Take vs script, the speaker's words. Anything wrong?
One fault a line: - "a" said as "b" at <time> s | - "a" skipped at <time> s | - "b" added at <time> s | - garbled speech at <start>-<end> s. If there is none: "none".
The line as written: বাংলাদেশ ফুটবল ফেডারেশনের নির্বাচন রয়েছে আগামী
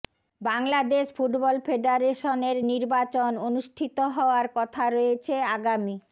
- "অনুষ্ঠিত হওয়ার কথা" added at 3.5 s